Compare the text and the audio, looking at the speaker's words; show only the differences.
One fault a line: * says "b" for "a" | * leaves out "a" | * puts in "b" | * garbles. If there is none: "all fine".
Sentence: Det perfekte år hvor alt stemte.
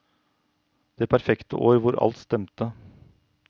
all fine